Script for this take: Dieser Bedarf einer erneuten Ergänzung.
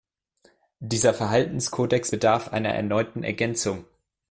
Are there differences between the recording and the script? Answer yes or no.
yes